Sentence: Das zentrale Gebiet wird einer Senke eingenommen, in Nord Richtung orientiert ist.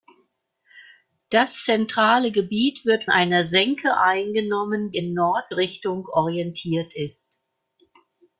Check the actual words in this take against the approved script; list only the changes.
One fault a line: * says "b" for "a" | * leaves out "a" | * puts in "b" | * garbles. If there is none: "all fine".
all fine